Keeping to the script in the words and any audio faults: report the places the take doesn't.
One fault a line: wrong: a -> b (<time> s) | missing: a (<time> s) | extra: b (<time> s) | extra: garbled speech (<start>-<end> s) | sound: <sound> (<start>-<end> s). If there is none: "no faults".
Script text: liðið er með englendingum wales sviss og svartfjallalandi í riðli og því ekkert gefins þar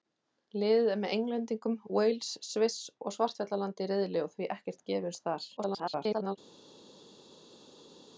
extra: garbled speech (5.6-6.4 s)